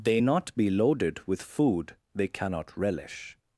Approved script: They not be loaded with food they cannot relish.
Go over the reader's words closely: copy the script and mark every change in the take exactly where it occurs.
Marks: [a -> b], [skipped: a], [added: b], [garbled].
They not be loaded with food they cannot relish.